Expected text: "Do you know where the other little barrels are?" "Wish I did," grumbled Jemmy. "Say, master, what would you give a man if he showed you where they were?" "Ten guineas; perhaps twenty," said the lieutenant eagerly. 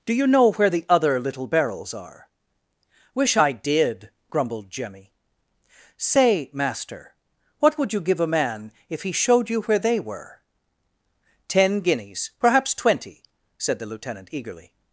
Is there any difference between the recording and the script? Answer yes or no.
no